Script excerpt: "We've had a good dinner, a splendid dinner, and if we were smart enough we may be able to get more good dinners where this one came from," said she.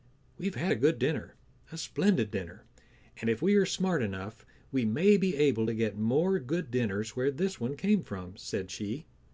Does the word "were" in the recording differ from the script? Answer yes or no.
yes